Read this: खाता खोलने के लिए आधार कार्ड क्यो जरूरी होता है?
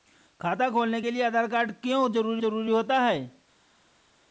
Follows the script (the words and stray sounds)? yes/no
no